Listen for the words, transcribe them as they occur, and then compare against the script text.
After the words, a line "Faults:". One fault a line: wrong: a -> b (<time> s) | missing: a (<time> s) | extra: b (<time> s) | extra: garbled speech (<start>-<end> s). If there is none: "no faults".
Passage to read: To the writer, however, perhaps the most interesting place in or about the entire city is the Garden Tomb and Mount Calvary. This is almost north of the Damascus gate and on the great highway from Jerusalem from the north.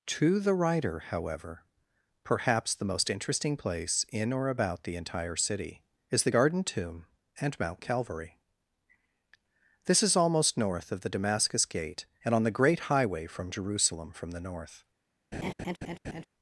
To the writer, however, perhaps the most interesting place in or about the entire city is the Garden Tomb and Mount Calvary. This is almost north of the Damascus gate and on the great highway from Jerusalem from the north.
Faults:
no faults